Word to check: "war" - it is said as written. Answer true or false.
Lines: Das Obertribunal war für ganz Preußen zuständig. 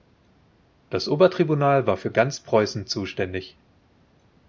true